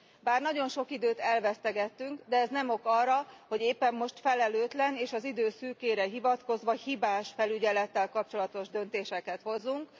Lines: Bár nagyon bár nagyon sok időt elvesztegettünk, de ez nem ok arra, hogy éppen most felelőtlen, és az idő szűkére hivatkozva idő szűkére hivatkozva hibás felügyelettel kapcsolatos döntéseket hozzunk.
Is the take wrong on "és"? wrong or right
right